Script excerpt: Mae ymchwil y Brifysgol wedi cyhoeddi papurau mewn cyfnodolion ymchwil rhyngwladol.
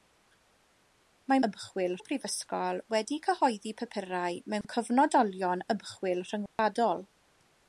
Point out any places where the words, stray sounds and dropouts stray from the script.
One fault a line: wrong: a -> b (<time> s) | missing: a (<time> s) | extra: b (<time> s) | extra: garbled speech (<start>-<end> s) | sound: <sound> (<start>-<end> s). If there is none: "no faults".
sound: dropout (4.6-4.6 s)
sound: dropout (6.5-6.6 s)